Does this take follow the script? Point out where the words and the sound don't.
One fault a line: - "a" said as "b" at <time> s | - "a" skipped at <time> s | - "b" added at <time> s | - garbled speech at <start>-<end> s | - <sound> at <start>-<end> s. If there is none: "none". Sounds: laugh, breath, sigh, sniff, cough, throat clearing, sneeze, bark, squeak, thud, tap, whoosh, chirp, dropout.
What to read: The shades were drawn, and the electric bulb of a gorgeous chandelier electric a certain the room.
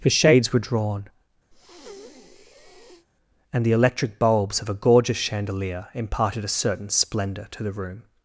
- breath at 1.5-3.1 s
- "bulb" said as "bulbs" at 4.2 s
- "electric" said as "imparted" at 5.9 s
- "splendour to" added at 6.9 s